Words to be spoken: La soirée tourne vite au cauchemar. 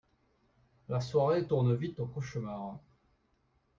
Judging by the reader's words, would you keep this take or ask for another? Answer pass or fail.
pass